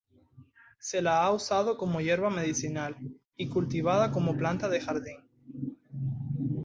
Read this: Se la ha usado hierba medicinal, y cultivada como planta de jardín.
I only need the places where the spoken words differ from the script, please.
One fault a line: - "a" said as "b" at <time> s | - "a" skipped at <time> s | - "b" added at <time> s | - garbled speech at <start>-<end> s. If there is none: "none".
- "como" added at 1.8 s